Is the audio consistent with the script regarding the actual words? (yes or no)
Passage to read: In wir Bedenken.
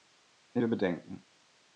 yes